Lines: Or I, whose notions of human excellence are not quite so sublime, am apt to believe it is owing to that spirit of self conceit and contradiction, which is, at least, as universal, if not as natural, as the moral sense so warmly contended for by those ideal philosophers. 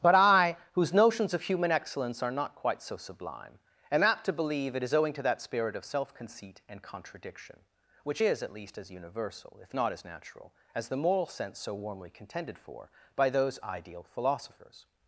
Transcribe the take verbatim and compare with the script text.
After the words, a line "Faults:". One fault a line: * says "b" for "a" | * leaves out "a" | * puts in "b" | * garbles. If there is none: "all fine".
But I, whose notions of human excellence are not quite so sublime, am apt to believe it is owing to that spirit of self conceit and contradiction, which is, at least, as universal, if not as natural, as the moral sense so warmly contended for by those ideal philosophers.
Faults:
* says "But" for "Or"